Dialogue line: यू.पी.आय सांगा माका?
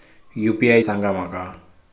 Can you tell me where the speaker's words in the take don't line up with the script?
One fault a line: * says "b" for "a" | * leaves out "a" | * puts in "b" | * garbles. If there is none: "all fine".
all fine